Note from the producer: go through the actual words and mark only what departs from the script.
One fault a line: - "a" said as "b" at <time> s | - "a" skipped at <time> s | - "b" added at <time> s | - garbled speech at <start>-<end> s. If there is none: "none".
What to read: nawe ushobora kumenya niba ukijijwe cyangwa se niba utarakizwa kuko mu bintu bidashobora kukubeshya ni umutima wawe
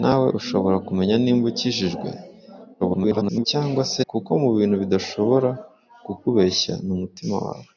- garbled speech at 2.8-3.5 s
- "niba utarakizwa" skipped at 4.0 s